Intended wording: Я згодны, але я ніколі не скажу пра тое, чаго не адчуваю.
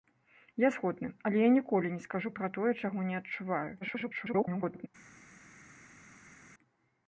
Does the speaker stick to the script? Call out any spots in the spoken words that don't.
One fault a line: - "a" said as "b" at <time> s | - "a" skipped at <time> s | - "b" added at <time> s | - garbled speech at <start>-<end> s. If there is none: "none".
- garbled speech at 3.8-4.9 s